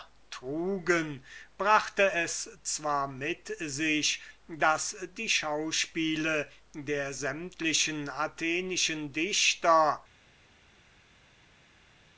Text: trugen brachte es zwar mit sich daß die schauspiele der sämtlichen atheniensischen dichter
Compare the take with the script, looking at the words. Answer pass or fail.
pass